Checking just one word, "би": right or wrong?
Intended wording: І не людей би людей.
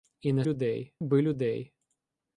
right